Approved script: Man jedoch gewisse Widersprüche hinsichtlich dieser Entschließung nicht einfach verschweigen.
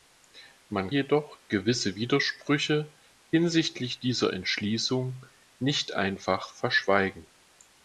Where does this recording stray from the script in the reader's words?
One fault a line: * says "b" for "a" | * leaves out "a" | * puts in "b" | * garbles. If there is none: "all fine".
all fine